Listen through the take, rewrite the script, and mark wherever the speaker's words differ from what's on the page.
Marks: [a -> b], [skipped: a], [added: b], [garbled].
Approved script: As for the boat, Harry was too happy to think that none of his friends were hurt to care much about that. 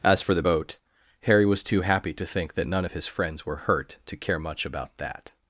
As for the boat, Harry was too happy to think that none of his friends were hurt to care much about that.